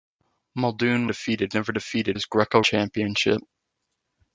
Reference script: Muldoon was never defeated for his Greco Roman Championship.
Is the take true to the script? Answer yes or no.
no